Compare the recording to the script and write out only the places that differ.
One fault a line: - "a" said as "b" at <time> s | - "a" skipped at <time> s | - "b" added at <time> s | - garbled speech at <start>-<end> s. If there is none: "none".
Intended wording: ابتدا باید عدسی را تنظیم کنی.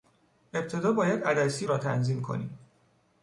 none